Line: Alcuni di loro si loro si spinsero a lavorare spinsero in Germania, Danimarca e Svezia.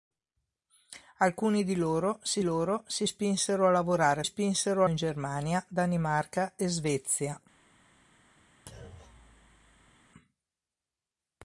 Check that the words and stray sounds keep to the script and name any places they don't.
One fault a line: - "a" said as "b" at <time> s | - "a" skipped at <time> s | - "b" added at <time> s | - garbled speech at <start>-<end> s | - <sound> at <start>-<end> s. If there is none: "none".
- thud at 8.7-10.0 s